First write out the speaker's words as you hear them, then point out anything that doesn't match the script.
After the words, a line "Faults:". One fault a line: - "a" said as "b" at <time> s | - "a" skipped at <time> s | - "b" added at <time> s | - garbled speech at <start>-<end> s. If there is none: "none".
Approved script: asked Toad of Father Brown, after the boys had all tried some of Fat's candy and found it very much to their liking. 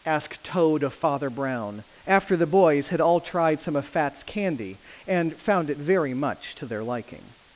asked Toad of Father Brown, after the boys had all tried some of Fat's candy and found it very much to their liking.
Faults:
none